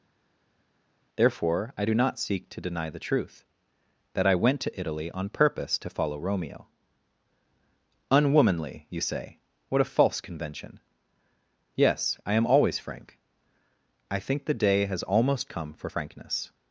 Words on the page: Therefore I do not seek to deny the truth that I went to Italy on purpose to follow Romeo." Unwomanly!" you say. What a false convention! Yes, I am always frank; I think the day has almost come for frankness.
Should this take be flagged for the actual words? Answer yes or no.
no